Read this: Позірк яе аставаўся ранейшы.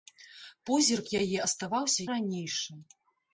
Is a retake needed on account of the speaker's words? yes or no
no